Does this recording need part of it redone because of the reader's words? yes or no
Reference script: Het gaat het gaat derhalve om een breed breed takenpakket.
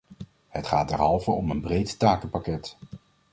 yes